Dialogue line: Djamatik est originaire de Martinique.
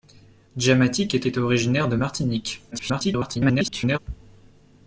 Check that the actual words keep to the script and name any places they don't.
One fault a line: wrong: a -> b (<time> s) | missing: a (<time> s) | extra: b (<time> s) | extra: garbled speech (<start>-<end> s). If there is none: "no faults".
extra: est (1.2 s)
extra: garbled speech (2.7-4.0 s)